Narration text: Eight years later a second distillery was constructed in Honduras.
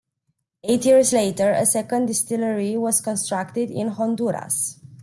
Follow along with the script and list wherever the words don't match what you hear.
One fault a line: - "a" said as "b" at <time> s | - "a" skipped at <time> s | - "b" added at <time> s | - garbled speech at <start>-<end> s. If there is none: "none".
none